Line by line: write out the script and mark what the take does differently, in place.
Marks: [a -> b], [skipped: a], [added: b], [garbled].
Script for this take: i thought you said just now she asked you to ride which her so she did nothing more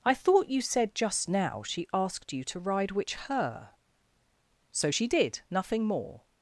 i thought you said just now she asked you to ride which her so she did nothing more